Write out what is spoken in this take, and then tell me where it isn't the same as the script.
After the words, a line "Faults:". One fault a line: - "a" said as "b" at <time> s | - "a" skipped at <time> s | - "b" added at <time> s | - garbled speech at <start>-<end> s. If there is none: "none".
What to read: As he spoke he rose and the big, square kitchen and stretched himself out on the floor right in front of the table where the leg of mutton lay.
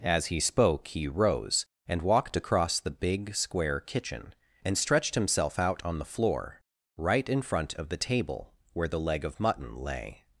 As he spoke he rose and walked across the big, square kitchen and stretched himself out on the floor right in front of the table where the leg of mutton lay.
Faults:
- "walked across" added at 2.0 s